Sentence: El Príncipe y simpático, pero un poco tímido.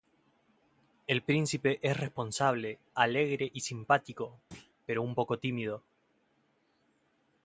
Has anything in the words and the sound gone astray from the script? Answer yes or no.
yes